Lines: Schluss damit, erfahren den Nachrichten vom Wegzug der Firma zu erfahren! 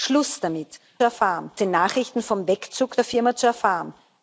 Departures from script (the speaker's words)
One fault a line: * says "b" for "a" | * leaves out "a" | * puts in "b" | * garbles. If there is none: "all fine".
all fine